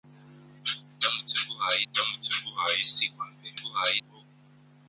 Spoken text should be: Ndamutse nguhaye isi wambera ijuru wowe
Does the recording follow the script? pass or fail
fail